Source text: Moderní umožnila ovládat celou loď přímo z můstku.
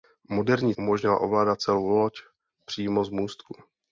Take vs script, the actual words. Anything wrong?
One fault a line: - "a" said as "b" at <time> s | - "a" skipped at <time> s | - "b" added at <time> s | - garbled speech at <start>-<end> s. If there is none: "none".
none